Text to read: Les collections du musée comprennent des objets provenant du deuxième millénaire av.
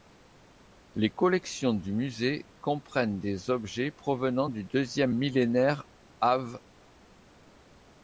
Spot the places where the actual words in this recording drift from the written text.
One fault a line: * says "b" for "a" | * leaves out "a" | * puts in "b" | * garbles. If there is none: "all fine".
all fine